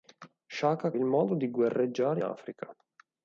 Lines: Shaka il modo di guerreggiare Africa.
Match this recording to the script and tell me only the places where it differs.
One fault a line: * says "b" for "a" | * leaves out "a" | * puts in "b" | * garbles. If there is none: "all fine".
all fine